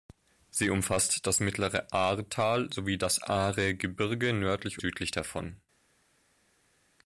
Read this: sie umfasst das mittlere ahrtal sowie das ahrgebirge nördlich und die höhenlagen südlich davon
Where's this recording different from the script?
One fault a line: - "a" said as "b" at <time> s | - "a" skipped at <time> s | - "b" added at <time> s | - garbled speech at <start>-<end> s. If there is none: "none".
- "und die höhenlagen" skipped at 4.8 s